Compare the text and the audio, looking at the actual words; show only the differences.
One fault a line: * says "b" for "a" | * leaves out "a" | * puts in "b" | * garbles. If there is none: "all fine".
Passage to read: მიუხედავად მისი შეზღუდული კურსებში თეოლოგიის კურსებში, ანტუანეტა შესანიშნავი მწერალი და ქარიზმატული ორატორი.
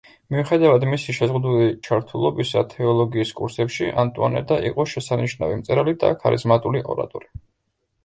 * says "ჩართულობისა" for "კურსებში"
* puts in "იყო"